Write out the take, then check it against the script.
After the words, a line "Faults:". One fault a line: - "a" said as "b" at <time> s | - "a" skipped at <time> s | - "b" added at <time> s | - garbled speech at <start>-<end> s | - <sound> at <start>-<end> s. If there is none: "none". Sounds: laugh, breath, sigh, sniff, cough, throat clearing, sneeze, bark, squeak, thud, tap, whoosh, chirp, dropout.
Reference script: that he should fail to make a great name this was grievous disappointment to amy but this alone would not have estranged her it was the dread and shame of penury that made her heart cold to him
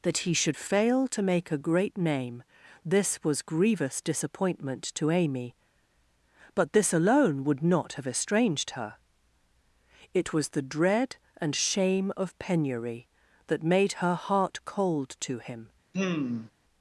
that he should fail to make a great name this was grievous disappointment to amy but this alone would not have estranged her it was the dread and shame of penury that made her heart cold to him
Faults:
- sigh at 15.9-16.5 s